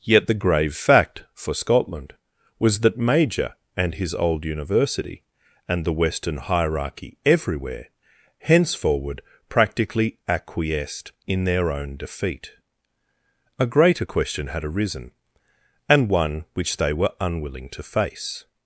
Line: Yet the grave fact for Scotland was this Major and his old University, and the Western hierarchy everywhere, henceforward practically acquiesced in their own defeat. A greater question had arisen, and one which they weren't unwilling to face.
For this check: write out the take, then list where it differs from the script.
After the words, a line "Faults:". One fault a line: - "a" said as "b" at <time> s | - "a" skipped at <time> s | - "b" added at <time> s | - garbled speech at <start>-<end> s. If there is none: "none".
Yet the grave fact for Scotland was that Major and his old University, and the Western hierarchy everywhere, henceforward practically acquiesced in their own defeat. A greater question had arisen, and one which they were unwilling to face.
Faults:
- "this" said as "that" at 2.8 s
- "weren't" said as "were" at 16.9 s